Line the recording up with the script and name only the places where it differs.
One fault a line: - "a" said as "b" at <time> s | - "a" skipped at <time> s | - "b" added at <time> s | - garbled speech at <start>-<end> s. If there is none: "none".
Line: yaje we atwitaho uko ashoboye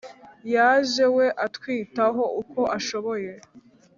none